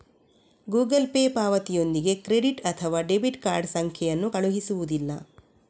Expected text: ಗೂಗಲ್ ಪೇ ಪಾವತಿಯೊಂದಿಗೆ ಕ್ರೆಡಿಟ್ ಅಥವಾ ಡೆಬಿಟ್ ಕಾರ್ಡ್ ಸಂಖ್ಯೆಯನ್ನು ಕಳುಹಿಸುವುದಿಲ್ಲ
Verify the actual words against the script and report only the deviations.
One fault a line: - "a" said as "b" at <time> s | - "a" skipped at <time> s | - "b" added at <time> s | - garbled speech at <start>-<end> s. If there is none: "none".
none